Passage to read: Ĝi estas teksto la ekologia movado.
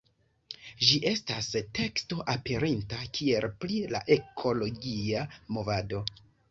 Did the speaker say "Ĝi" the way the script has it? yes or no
yes